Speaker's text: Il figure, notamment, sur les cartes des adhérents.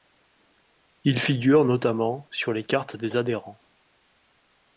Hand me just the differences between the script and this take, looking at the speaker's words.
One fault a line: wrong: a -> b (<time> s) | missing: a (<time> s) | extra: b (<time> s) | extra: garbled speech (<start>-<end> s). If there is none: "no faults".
no faults